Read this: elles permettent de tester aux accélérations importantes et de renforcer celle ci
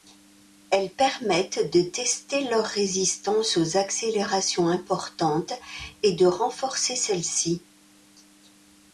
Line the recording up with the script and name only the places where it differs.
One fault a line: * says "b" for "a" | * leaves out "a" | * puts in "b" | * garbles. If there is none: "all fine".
* puts in "leur résistance"